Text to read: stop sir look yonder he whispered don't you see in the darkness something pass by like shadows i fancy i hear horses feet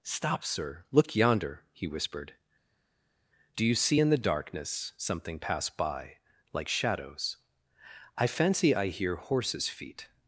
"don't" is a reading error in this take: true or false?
true